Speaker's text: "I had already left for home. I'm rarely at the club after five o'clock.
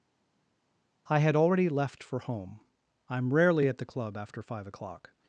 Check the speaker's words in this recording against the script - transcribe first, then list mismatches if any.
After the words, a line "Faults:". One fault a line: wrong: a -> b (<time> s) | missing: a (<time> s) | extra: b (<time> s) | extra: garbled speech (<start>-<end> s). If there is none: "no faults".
"I had already left for home. I'm rarely at the club after five o'clock.
Faults:
no faults